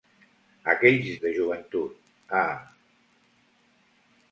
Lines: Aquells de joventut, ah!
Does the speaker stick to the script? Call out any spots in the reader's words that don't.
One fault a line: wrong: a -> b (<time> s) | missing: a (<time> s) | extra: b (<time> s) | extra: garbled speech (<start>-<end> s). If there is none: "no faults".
no faults